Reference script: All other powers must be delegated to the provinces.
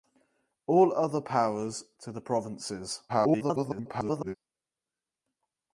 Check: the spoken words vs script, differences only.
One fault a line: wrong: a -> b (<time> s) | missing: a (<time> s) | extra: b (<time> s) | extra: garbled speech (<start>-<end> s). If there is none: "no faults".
missing: must be delegated (1.8 s)
extra: garbled speech (3.1-4.4 s)